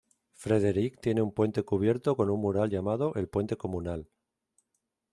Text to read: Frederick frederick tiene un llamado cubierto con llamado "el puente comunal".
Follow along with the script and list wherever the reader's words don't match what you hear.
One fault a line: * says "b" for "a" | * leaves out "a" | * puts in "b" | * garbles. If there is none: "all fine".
* leaves out "frederick"
* says "puente" for "llamado"
* puts in "un mural"